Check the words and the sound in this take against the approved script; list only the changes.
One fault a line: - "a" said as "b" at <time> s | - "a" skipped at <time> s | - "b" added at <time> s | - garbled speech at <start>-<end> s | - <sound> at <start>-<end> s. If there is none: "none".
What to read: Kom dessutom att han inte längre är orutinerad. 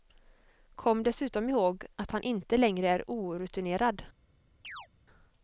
- "ihåg" added at 1.5 s
- chirp at 4.6-4.9 s